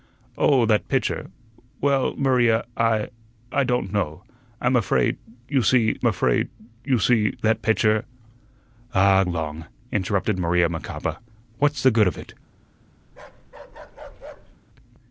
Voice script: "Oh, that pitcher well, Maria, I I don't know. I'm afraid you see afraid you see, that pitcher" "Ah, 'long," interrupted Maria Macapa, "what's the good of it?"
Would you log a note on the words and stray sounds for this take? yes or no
yes